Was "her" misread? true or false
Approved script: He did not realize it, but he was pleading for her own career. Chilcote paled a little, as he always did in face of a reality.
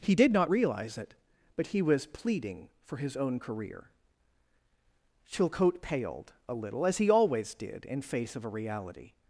true